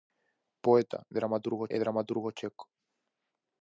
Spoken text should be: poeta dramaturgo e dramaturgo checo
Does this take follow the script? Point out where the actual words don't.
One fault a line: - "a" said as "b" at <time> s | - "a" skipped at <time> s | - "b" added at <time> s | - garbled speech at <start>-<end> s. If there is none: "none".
none